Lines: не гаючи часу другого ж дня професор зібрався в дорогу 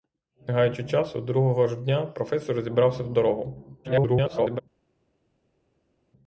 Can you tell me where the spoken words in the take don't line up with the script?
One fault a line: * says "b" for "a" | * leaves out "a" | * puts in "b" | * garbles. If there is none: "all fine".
* garbles